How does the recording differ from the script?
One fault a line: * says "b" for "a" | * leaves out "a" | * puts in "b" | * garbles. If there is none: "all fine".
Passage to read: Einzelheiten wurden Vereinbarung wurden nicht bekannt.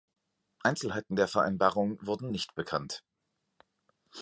* says "der" for "wurden"